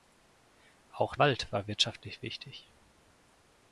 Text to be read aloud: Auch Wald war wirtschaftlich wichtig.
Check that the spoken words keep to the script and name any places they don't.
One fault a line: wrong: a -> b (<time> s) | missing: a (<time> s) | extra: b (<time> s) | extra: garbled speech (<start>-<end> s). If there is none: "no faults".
no faults